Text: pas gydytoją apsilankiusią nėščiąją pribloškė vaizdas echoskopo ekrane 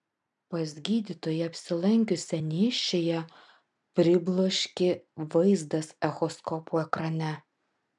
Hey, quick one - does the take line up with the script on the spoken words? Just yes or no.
yes